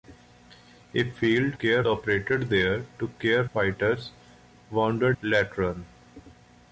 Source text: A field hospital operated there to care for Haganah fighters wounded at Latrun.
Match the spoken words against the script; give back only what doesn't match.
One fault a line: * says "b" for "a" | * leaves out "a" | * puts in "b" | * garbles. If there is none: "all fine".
* says "care" for "hospital"
* leaves out "for Haganah"
* leaves out "at"